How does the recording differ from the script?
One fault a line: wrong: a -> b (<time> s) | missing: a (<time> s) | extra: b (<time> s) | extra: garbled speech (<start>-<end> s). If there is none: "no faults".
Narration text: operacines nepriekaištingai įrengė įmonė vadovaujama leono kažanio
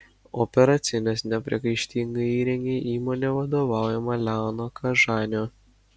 no faults